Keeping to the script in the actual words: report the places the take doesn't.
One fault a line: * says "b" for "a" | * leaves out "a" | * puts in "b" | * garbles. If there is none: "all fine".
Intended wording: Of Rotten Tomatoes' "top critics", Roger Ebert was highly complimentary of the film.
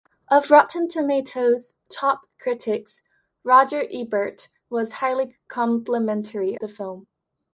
* leaves out "of"